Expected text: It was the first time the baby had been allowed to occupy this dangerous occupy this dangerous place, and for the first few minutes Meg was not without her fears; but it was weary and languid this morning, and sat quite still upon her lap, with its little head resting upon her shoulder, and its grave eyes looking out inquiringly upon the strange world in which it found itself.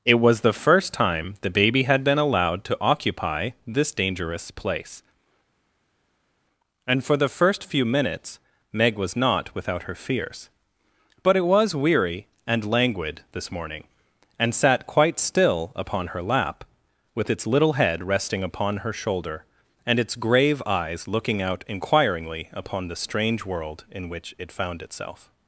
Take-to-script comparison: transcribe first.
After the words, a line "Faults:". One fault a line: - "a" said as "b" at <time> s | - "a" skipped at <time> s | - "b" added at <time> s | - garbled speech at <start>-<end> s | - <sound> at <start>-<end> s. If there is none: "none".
It was the first time the baby had been allowed to occupy this dangerous place, and for the first few minutes Meg was not without her fears; but it was weary and languid this morning, and sat quite still upon her lap, with its little head resting upon her shoulder, and its grave eyes looking out inquiringly upon the strange world in which it found itself.
Faults:
- "occupy this dangerous" skipped at 4.5 s